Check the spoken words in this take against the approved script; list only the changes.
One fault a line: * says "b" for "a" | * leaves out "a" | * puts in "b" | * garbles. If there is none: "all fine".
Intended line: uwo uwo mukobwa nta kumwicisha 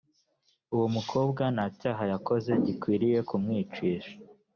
* leaves out "uwo"
* puts in "cyaha yakoze gikwiriye"